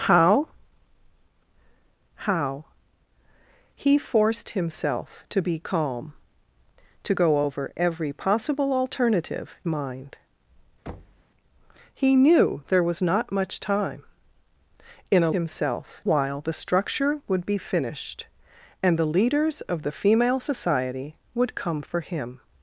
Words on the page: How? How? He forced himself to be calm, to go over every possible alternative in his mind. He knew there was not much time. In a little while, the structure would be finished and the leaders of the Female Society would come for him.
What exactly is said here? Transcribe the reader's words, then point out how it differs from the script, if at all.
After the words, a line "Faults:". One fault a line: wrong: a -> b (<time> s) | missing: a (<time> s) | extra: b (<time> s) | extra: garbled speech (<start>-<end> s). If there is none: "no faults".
How? How? He forced himself to be calm, to go over every possible alternative mind. He knew there was not much time. In a himself while, the structure would be finished and the leaders of the Female Society would come for him.
Faults:
missing: in his (9.6 s)
wrong: little -> himself (15.3 s)